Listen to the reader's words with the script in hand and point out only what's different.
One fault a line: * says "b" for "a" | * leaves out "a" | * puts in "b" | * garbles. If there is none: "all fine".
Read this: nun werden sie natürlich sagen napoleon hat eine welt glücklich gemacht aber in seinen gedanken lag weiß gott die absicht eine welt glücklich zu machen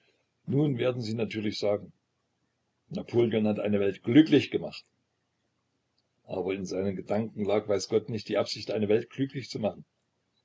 * puts in "nicht"